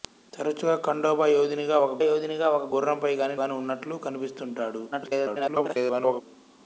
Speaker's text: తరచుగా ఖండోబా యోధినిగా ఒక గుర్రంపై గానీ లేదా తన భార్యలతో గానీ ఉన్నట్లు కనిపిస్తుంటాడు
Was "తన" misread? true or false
true